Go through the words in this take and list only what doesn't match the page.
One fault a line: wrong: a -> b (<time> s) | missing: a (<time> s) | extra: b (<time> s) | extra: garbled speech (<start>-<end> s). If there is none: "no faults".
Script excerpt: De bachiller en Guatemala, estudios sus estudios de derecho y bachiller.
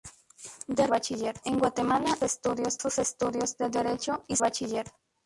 no faults